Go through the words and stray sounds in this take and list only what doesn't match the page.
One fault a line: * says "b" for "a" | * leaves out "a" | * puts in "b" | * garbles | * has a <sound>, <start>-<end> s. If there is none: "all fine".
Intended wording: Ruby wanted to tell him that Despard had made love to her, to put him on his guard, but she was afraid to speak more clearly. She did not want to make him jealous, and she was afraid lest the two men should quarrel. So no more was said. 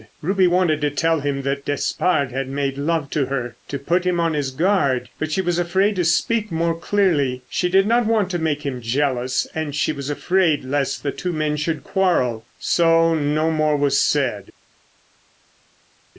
all fine